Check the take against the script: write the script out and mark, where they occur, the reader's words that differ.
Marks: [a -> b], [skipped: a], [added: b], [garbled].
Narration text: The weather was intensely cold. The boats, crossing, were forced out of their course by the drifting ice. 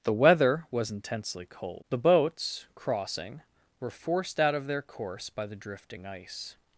The weather was intensely cold. The boats, crossing, were forced out of their course by the drifting ice.